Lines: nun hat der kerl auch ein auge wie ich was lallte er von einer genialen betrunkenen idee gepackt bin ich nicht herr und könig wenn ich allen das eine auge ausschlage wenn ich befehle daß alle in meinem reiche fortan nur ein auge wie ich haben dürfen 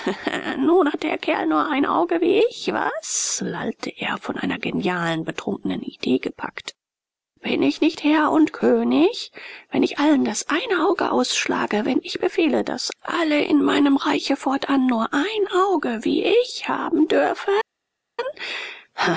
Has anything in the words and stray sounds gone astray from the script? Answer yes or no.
yes